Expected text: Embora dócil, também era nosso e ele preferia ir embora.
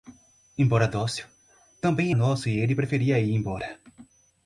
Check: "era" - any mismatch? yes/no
yes